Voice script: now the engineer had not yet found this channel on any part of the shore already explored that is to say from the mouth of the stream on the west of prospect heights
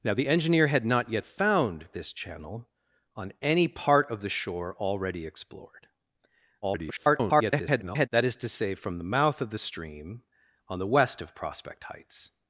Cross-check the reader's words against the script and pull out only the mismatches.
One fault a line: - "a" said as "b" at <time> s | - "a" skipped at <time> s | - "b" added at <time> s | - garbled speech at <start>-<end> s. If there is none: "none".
- garbled speech at 6.6-8.1 s